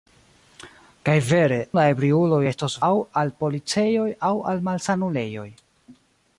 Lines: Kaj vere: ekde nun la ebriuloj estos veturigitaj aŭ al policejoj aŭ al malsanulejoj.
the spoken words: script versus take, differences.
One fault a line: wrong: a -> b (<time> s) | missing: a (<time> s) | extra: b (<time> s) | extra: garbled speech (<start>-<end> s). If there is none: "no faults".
missing: ekde nun (1.6 s)
missing: veturigitaj (2.8 s)